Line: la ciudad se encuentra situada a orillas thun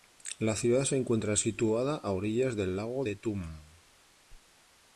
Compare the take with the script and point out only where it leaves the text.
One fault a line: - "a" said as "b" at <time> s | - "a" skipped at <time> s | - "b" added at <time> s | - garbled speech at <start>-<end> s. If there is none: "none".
- "del lago de" added at 2.5 s